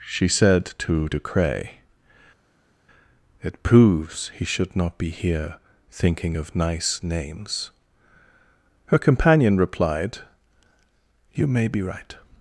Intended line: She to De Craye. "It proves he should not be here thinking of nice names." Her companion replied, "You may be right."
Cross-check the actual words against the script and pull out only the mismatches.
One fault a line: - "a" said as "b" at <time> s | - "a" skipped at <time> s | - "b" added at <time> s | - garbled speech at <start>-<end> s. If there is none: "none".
- "said" added at 0.3 s